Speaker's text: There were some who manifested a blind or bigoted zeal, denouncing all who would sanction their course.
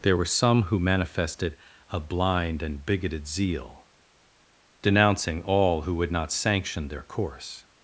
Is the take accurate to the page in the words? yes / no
no